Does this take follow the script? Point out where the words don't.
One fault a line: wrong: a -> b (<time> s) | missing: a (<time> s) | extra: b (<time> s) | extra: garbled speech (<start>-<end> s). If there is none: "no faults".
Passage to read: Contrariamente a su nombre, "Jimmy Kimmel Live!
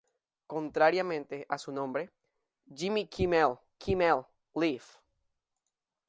extra: Kimmel (3.8 s)